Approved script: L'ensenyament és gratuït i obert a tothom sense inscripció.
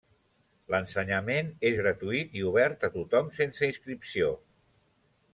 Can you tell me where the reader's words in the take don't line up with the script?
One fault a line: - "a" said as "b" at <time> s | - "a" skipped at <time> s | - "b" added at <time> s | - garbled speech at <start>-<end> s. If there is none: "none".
none